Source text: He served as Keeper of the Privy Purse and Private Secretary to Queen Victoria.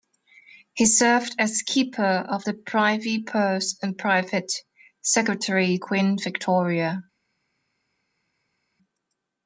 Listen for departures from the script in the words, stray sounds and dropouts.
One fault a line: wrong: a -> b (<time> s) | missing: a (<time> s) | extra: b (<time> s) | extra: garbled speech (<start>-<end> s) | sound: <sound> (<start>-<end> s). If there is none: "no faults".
missing: to (5.8 s)